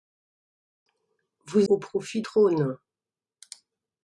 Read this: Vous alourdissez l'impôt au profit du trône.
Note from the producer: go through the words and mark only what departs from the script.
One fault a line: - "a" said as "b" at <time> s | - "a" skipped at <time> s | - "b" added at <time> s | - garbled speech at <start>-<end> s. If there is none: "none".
- "alourdissez l'impôt" skipped at 1.7 s
- "du" skipped at 2.2 s